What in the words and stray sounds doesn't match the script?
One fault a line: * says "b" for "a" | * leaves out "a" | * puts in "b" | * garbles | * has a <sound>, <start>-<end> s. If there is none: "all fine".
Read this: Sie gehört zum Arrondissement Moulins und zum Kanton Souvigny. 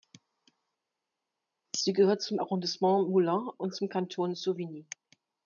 all fine